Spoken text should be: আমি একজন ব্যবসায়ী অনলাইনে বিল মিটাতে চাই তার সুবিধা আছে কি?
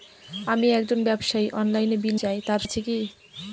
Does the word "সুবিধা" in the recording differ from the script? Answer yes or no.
yes